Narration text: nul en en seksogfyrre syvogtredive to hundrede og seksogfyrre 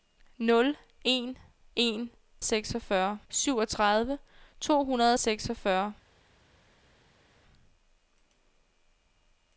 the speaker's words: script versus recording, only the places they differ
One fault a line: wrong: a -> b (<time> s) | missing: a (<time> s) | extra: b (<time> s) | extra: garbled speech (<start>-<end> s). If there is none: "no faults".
no faults